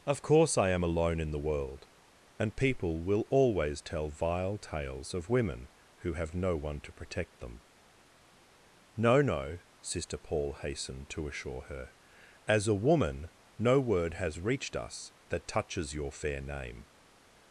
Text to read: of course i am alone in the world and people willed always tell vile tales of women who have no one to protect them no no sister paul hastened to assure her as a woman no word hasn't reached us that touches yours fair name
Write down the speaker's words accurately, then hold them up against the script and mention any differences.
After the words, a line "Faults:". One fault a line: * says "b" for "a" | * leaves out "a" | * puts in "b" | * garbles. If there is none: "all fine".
of course i am alone in the world and people will always tell vile tales of women who have no one to protect them no no sister paul hastened to assure her as a woman no word has reached us that touches your fair name
Faults:
* says "will" for "willed"
* says "has" for "hasn't"
* says "your" for "yours"